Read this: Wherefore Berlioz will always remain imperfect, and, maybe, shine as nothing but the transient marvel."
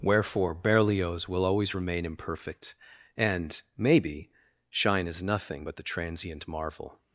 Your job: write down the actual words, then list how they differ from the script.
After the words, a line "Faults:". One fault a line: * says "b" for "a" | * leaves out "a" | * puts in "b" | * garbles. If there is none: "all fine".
Wherefore Berlioz will always remain imperfect, and, maybe, shine as nothing but the transient marvel."
Faults:
all fine